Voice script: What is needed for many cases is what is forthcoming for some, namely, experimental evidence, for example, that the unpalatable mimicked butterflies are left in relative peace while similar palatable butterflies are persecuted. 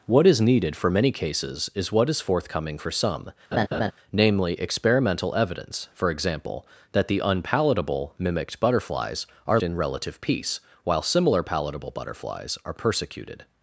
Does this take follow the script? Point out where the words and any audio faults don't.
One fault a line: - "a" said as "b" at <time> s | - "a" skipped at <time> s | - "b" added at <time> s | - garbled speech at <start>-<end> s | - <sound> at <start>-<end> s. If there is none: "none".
- laugh at 3.5-3.9 s
- "left" skipped at 9.6 s